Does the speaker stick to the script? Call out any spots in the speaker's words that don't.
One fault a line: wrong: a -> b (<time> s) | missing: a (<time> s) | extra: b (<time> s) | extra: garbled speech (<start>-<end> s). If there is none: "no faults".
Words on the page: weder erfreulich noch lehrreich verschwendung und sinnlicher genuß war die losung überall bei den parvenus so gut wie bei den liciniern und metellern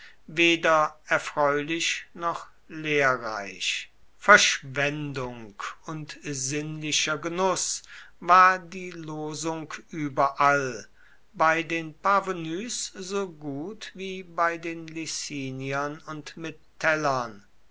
no faults